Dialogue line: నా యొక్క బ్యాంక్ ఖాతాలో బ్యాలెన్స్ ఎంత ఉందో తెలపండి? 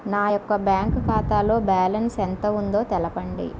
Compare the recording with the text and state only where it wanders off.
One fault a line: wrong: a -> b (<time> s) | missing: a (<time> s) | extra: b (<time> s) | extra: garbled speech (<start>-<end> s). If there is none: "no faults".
no faults